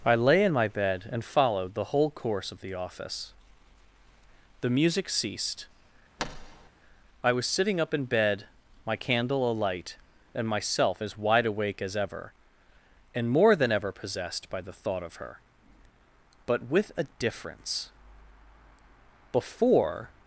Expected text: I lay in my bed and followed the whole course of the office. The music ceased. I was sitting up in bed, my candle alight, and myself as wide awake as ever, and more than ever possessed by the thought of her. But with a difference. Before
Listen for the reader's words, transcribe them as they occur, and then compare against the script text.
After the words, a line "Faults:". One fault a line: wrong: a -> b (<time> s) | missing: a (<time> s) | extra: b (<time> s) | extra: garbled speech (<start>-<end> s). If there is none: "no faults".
I lay in my bed and followed the whole course of the office. The music ceased. I was sitting up in bed, my candle alight, and myself as wide awake as ever, and more than ever possessed by the thought of her. But with a difference. Before
Faults:
no faults